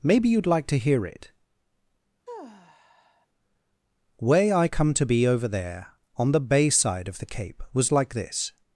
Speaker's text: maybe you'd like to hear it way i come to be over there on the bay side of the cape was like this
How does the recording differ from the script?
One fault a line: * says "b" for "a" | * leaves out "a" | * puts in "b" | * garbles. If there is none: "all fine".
all fine